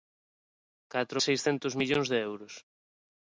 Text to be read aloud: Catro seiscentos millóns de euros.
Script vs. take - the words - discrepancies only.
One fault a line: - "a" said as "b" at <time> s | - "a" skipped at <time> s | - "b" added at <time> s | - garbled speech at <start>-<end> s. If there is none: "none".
none